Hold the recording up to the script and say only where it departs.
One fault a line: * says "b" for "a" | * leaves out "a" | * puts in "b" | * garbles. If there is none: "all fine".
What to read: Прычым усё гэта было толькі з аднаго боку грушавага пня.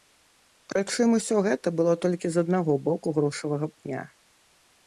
all fine